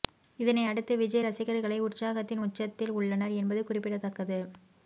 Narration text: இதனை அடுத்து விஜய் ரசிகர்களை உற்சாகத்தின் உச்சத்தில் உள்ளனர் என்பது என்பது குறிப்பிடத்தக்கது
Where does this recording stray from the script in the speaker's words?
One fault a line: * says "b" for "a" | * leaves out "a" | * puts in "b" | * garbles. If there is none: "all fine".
* leaves out "என்பது"